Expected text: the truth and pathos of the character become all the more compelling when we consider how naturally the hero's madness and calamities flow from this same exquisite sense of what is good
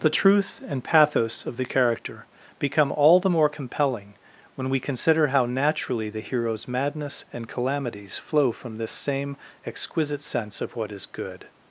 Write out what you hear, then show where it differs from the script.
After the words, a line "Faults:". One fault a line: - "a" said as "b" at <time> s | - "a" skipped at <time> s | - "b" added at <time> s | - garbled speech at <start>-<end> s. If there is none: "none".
the truth and pathos of the character become all the more compelling when we consider how naturally the hero's madness and calamities flow from this same exquisite sense of what is good
Faults:
none